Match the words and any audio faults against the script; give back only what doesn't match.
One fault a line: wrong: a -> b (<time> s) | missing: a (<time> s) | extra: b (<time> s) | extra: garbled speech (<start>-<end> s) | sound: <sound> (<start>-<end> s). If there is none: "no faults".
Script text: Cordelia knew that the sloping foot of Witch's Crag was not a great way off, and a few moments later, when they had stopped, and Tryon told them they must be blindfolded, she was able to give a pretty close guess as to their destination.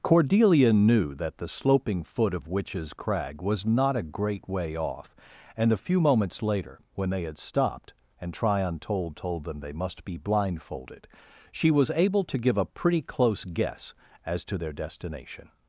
extra: told (9.2 s)